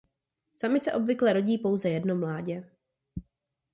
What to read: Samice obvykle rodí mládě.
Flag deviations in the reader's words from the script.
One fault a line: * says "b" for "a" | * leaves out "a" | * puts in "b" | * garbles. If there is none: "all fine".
* puts in "pouze jedno"